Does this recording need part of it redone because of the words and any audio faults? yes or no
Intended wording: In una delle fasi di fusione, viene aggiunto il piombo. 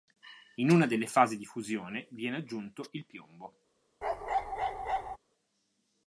yes